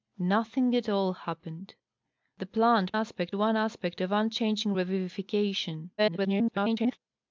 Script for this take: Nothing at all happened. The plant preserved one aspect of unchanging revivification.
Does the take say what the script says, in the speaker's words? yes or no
no